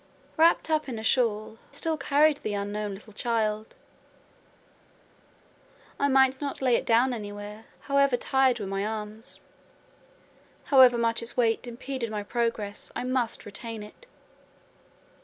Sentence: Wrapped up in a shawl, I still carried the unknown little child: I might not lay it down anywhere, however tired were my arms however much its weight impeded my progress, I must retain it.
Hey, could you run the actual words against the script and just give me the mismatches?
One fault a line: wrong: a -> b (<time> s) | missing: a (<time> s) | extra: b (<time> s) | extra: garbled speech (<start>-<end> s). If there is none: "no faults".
missing: I (1.6 s)